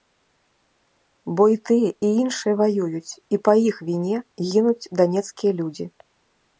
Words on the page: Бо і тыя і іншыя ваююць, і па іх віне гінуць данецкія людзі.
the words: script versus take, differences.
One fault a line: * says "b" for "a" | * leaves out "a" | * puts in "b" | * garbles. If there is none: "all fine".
all fine